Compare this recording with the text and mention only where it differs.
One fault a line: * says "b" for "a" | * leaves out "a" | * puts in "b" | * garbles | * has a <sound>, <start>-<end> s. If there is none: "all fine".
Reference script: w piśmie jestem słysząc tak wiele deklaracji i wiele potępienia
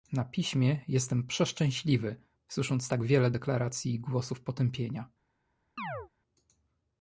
* says "na" for "w"
* puts in "przeszczęśliwy"
* says "głosów" for "wiele"
* has a chirp, 5.8-6.1 s